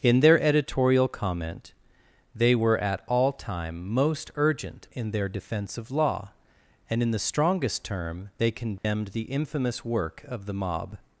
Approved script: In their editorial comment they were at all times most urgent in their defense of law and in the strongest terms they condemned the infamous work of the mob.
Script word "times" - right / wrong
wrong